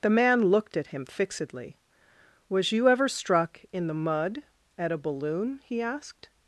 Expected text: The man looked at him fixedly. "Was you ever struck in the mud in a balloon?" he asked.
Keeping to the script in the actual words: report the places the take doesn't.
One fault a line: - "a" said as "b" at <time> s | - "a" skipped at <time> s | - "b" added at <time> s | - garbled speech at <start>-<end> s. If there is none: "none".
- "in" said as "at" at 4.8 s